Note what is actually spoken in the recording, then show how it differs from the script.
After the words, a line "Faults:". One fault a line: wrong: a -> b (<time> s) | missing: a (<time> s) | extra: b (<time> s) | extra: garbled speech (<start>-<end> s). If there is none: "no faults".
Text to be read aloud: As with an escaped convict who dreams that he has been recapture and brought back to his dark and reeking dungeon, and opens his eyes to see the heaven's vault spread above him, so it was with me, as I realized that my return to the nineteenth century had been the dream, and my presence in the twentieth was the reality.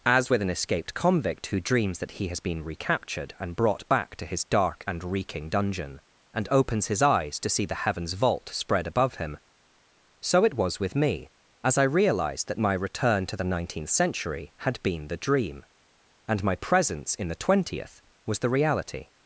As with an escaped convict who dreams that he has been recaptured and brought back to his dark and reeking dungeon, and opens his eyes to see the heaven's vault spread above him, so it was with me, as I realized that my return to the nineteenth century had been the dream, and my presence in the twentieth was the reality.
Faults:
wrong: recapture -> recaptured (2.6 s)